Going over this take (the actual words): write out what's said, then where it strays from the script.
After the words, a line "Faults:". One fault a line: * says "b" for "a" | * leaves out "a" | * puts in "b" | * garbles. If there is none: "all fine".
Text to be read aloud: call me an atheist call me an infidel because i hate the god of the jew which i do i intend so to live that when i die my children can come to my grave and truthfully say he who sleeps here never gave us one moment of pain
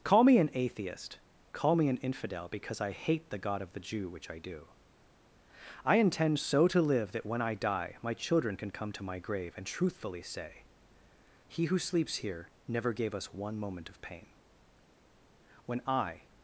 call me an atheist call me an infidel because i hate the god of the jew which i do i intend so to live that when i die my children can come to my grave and truthfully say he who sleeps here never gave us one moment of pain when i
Faults:
* puts in "when i"